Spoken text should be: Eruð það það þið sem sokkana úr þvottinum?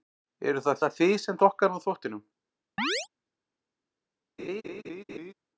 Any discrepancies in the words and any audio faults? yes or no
yes